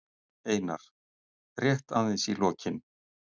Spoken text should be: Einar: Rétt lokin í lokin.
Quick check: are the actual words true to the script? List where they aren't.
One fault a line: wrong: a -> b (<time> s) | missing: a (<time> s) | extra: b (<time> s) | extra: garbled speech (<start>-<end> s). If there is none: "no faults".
wrong: lokin -> aðeins (2.0 s)